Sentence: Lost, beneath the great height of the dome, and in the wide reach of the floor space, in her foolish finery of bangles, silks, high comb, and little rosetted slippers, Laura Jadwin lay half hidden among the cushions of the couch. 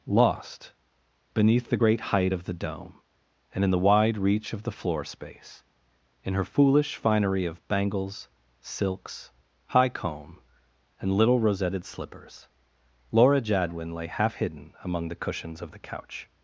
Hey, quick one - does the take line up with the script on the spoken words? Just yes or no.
yes